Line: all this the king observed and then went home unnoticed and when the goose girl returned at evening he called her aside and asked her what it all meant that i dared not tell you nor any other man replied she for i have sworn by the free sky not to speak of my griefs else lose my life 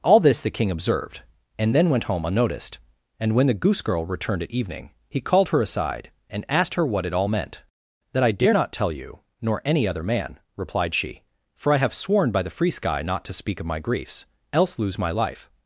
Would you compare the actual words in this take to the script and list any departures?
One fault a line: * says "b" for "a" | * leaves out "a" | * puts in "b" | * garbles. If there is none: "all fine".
* says "dare" for "dared"